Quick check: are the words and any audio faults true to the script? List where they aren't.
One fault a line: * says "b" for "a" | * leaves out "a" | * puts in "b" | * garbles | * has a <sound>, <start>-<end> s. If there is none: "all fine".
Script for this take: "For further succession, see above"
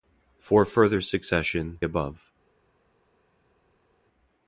* leaves out "see"